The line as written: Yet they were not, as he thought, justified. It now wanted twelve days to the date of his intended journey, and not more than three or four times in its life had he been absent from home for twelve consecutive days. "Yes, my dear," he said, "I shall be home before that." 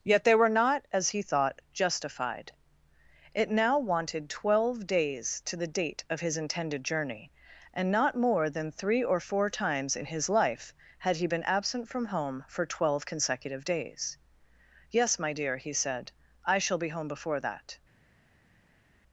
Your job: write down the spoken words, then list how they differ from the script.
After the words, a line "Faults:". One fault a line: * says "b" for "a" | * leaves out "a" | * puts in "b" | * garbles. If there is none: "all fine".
Yet they were not, as he thought, justified. It now wanted twelve days to the date of his intended journey, and not more than three or four times in his life had he been absent from home for twelve consecutive days. "Yes, my dear," he said, "I shall be home before that."
Faults:
* says "his" for "its"